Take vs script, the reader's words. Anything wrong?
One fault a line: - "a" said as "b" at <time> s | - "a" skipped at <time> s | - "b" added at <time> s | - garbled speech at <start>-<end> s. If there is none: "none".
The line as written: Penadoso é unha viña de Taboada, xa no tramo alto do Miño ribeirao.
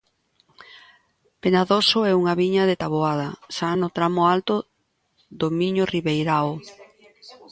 none